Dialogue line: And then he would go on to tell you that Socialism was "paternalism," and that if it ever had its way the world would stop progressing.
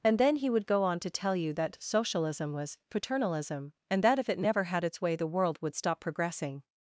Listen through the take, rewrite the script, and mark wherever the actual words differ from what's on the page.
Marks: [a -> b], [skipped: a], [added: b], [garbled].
And then he would go on to tell you that Socialism was "paternalism," and that if it [ever -> never] had its way the world would stop progressing.